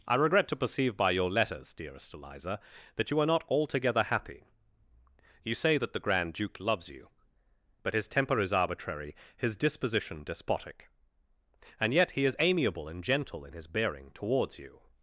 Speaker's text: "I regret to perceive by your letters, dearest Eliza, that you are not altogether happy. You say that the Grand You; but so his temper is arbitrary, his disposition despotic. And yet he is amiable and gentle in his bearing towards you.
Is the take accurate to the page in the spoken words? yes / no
no